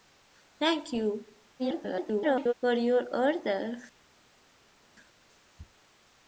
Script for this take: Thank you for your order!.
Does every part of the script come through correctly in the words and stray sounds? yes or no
no